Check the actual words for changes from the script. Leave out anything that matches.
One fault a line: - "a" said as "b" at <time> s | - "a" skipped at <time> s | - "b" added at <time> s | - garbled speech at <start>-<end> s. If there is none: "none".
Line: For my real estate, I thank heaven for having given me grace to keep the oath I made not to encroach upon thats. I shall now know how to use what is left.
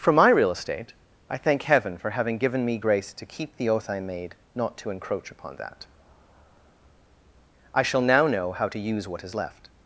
- "thats" said as "that" at 5.6 s